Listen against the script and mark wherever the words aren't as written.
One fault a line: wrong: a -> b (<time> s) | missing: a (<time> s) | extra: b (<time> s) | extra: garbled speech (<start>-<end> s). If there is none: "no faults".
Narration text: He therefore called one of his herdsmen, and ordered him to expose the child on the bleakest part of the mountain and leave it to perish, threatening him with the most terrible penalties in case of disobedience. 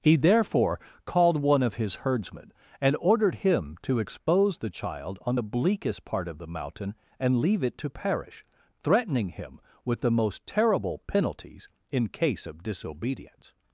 no faults